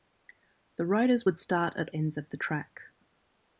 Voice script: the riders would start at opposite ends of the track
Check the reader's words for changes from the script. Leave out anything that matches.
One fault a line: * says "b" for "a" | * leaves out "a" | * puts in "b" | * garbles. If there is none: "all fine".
* leaves out "opposite"